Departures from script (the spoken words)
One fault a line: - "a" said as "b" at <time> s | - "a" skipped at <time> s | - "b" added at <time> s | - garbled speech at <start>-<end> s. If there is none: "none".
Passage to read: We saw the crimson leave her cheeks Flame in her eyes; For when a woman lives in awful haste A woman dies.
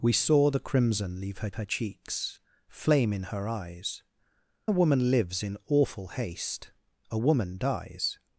- "her" added at 1.5 s
- "For when" skipped at 4.0 s